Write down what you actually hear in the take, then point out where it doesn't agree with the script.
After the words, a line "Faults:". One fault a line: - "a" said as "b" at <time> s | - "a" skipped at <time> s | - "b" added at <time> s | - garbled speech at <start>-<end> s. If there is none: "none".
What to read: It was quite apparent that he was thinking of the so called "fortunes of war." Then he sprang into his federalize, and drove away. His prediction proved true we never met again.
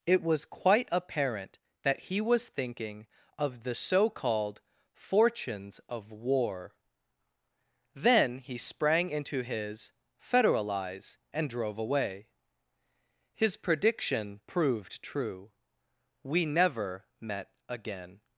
It was quite apparent that he was thinking of the so called "fortunes of war." Then he sprang into his federalize, and drove away. His prediction proved true we never met again.
Faults:
none